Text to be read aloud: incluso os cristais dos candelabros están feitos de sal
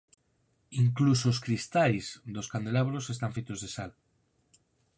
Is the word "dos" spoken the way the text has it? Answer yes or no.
yes